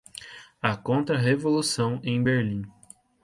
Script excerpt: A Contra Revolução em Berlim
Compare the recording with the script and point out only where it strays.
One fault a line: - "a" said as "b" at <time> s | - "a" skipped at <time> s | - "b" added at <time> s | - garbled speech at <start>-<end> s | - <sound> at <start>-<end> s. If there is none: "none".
none